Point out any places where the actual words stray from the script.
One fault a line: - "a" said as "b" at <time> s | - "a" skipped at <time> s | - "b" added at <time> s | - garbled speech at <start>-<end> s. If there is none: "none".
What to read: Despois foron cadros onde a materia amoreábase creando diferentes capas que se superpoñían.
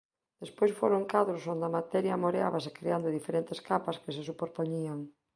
none